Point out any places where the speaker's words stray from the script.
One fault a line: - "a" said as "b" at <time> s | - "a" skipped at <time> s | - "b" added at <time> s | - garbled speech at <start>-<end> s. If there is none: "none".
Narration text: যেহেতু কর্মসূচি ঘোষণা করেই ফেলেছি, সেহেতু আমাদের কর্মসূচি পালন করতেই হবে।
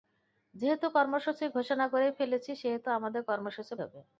- "পালন করতেই" skipped at 3.7 s